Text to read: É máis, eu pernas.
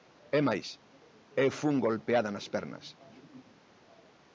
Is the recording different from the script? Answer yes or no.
yes